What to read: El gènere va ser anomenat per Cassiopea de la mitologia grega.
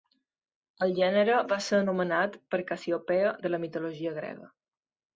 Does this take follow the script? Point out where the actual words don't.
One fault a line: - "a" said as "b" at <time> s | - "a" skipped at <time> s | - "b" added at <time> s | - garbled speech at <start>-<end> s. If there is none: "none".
none